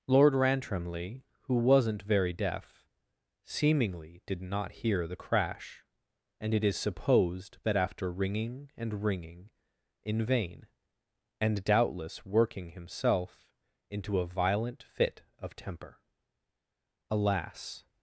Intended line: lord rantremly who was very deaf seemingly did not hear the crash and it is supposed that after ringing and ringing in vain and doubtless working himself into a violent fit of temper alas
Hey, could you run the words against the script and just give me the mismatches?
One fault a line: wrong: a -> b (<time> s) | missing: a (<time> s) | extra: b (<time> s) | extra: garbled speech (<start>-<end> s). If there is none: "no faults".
wrong: was -> wasn't (1.6 s)